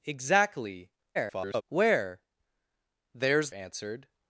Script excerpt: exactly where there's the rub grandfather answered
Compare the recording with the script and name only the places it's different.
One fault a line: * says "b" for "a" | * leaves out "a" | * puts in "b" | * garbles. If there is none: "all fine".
* garbles
* leaves out "the rub grandfather"